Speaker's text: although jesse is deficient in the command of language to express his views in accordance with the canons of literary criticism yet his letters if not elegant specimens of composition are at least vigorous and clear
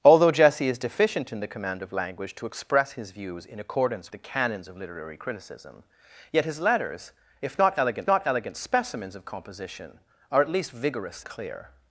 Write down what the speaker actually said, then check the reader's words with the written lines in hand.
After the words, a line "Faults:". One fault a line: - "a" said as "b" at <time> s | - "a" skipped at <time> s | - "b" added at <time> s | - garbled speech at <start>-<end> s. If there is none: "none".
although jesse is deficient in the command of language to express his views in accordance the canons of literary criticism yet his letters if not elegant not elegant specimens of composition are at least vigorous clear
Faults:
- "with" skipped at 4.1 s
- "not elegant" added at 8.0 s
- "and" skipped at 11.2 s